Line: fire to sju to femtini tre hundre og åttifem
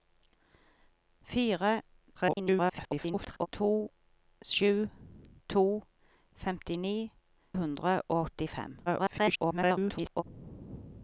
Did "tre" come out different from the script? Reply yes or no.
yes